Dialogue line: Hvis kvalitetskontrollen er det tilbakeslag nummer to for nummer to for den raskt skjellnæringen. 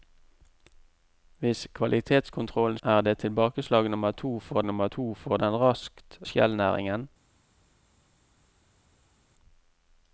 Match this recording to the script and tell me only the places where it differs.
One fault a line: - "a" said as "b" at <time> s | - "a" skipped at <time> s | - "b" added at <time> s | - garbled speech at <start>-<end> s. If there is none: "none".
none